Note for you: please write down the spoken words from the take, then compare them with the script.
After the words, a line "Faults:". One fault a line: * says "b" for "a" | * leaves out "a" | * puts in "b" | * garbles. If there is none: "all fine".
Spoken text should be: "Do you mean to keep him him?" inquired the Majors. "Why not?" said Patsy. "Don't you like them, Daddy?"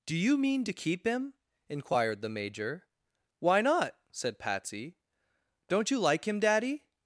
"Do you mean to keep him?" inquired the Major. "Why not?" said Patsy. "Don't you like him, Daddy?"
Faults:
* leaves out "him"
* says "Major" for "Majors"
* says "him" for "them"